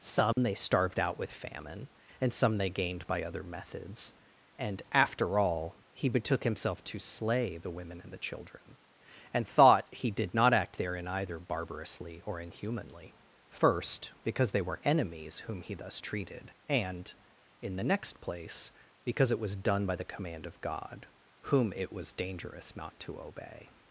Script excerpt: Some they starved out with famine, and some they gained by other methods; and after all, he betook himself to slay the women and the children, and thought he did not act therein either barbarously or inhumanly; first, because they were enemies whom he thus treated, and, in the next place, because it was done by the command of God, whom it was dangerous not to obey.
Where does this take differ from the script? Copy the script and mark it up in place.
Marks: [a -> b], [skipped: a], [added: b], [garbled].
Some they starved out with famine, and some they gained by other methods; and after all, he betook himself to slay the women and the children, and thought he did not act therein either barbarously or inhumanly; first, because they were enemies whom he thus treated, and, in the next place, because it was done by the command of God, whom it was dangerous not to obey.